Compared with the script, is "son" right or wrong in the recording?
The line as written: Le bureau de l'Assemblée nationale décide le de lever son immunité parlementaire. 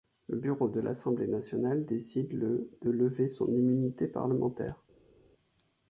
right